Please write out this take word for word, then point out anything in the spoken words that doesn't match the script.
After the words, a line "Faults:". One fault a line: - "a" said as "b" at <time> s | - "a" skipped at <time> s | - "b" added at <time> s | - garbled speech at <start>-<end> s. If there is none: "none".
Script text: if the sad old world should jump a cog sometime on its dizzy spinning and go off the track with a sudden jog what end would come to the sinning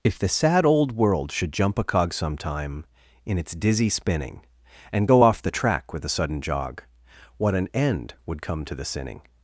if the sad old world should jump a cog sometime in its dizzy spinning and go off the track with a sudden jog what an end would come to the sinning
Faults:
- "on" said as "in" at 3.2 s
- "an" added at 7.5 s